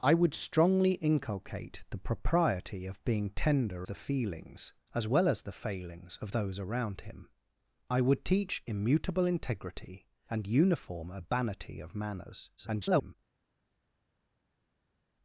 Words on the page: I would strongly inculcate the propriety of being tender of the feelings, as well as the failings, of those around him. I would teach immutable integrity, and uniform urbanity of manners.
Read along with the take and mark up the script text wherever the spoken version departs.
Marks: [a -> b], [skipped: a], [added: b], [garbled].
I would strongly inculcate the propriety of being tender [skipped: of] the feelings, as well as the failings, of those around him. I would teach immutable integrity, and uniform urbanity of manners. [garbled]